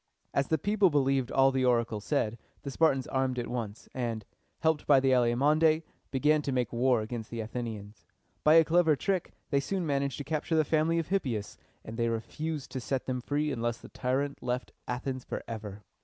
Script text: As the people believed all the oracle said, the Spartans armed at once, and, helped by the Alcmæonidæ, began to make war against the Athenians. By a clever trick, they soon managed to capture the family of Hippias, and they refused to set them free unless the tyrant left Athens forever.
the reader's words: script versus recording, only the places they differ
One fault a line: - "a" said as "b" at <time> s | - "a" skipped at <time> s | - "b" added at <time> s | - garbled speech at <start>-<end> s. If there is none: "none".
none